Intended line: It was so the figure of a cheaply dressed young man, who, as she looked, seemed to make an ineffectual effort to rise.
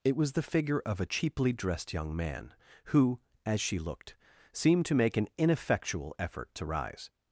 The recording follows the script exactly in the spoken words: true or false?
false